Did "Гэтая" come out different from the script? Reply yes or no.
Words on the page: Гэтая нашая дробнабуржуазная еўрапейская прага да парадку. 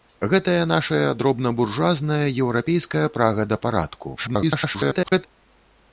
no